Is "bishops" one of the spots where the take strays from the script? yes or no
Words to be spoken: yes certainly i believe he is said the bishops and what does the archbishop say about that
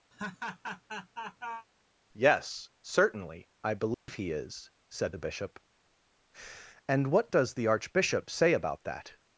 yes